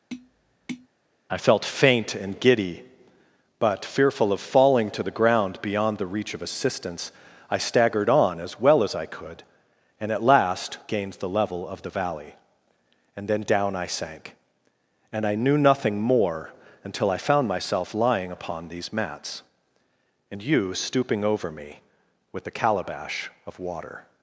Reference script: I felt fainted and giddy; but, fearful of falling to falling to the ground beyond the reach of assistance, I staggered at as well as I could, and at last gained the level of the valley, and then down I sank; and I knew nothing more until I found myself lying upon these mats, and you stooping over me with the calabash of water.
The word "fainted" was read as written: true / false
false